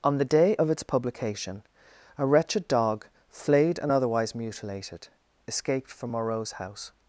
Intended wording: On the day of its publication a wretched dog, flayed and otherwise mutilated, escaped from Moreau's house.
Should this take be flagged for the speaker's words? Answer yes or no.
no